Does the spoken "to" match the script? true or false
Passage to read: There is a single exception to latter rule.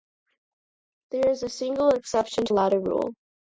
true